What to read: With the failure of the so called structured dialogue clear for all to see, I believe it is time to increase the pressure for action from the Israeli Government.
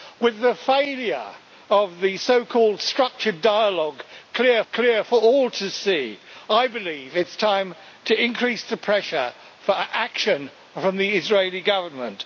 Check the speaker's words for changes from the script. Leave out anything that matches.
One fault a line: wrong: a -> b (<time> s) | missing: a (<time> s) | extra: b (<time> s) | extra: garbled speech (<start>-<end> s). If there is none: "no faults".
extra: clear (4.7 s)